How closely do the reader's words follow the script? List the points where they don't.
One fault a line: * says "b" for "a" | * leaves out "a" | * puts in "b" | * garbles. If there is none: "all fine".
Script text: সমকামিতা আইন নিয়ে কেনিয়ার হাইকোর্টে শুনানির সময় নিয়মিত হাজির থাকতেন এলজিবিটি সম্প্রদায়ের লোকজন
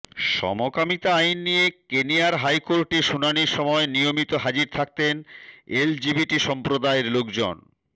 all fine